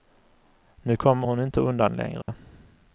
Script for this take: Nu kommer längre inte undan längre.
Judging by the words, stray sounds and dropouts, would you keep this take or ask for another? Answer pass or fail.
fail